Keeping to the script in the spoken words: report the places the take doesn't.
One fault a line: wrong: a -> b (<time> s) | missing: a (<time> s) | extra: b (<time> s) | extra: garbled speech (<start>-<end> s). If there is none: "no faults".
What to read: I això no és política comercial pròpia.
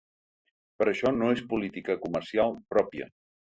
wrong: I -> Però (0.8 s)